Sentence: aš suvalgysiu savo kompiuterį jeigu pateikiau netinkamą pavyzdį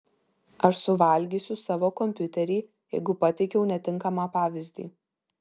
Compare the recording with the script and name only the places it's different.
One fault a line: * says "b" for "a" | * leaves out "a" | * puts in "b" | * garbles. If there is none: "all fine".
all fine